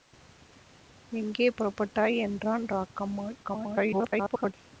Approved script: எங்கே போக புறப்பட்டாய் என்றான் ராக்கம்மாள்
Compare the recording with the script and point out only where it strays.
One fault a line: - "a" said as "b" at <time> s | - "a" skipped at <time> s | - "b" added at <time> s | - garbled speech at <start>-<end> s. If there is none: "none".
- "போக" skipped at 1.5 s
- garbled speech at 3.4-4.5 s